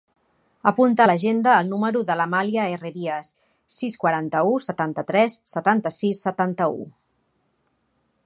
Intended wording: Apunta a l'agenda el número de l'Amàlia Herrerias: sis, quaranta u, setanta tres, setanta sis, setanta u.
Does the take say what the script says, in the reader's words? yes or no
yes